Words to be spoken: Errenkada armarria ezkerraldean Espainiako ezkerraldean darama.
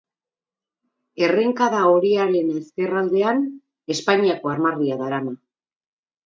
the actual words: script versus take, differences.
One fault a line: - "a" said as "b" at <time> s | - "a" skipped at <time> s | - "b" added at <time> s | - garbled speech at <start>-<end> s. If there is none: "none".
- "armarria" said as "horiaren" at 1.9 s
- "ezkerraldean" said as "armarria" at 4.5 s